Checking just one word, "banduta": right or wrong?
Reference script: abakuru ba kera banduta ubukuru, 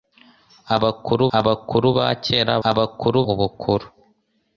wrong